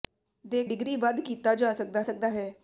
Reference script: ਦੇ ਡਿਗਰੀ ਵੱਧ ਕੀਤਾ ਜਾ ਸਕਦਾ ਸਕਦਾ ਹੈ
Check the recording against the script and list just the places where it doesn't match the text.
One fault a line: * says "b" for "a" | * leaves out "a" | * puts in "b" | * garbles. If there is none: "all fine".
all fine